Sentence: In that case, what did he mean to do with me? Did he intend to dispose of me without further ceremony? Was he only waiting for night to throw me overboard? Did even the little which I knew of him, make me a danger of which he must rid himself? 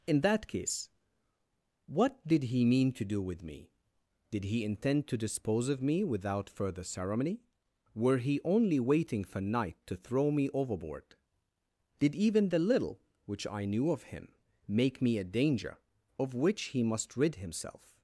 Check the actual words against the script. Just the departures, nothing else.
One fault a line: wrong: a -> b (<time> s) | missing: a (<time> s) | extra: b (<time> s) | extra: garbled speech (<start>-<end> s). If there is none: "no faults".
wrong: Was -> Were (7.9 s)